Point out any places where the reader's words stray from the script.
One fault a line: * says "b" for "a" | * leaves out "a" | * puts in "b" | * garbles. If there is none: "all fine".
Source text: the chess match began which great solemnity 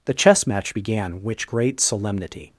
all fine